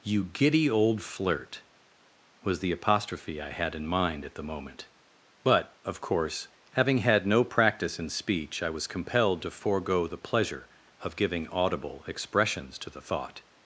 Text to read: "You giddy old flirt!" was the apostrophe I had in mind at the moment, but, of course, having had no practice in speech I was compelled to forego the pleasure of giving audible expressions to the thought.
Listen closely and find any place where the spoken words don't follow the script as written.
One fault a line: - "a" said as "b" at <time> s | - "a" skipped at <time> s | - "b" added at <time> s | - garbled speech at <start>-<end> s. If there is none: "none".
none